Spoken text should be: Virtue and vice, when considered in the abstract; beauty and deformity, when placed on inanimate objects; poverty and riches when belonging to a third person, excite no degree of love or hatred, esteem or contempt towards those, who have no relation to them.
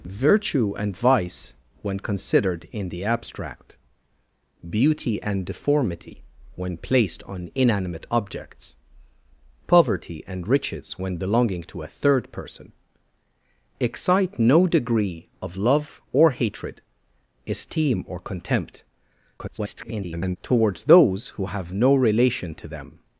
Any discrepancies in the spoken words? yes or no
yes